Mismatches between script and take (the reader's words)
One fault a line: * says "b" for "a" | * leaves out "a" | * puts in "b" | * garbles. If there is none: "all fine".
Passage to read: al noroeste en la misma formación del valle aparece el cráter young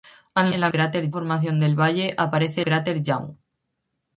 * leaves out "noroeste"
* says "cráter" for "misma"
* leaves out "el"